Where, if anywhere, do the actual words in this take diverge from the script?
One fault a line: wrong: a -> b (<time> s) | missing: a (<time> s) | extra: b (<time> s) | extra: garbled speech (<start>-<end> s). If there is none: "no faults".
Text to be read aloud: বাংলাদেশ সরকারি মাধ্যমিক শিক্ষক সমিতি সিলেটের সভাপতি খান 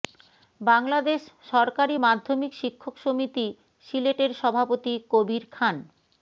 extra: কবির (5.1 s)